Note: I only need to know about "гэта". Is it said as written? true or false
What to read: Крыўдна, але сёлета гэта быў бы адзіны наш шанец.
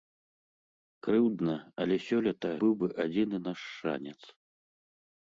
false